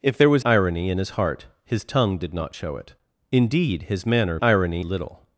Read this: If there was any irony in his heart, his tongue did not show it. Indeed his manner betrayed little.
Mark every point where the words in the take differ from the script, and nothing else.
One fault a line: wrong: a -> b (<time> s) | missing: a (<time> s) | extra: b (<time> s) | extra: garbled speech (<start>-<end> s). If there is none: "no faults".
missing: any (0.5 s)
wrong: betrayed -> irony (4.4 s)